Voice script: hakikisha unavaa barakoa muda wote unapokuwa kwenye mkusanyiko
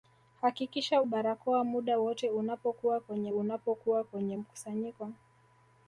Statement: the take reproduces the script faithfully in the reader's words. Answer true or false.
false